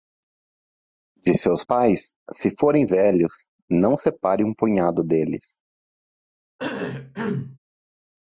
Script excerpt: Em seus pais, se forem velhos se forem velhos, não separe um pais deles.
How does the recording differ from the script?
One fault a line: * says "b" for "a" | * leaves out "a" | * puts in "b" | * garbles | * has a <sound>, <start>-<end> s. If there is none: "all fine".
* says "De" for "Em"
* leaves out "se forem velhos"
* says "punhado" for "pais"
* has a cough, 6.6-7.6 s